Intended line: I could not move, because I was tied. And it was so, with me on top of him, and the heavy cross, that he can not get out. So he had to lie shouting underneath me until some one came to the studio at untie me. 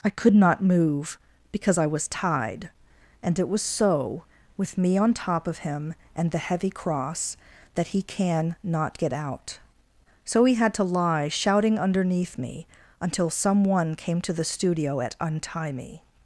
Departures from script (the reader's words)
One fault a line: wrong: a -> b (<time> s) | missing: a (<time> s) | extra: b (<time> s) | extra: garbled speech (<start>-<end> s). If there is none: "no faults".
no faults